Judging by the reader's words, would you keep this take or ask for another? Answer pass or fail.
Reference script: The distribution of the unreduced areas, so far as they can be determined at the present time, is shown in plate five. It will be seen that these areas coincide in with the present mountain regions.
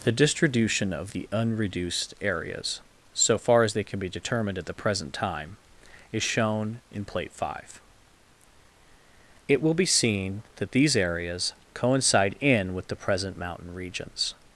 pass